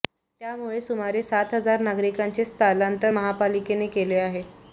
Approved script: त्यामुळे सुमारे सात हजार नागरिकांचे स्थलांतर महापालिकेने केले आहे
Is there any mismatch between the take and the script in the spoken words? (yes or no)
no